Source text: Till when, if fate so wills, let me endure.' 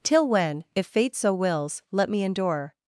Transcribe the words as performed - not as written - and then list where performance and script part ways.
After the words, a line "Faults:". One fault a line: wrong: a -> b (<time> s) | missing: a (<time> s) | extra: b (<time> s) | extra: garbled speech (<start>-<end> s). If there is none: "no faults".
Till when, if fate so wills, let me endure.'
Faults:
no faults